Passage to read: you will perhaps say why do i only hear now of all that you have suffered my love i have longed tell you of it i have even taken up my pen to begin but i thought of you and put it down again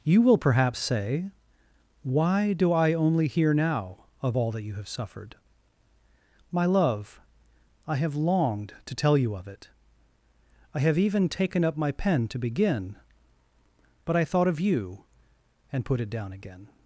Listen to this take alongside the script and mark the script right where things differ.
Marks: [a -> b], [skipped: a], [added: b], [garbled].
you will perhaps say why do i only hear now of all that you have suffered my love i have longed [added: to] tell you of it i have even taken up my pen to begin but i thought of you and put it down again